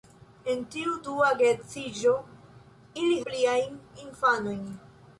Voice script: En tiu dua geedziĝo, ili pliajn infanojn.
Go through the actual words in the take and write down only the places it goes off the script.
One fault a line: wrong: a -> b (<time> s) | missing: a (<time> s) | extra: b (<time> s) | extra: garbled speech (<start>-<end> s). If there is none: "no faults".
no faults